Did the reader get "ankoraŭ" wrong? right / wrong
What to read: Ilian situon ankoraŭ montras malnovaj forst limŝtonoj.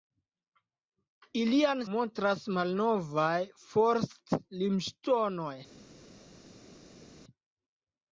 wrong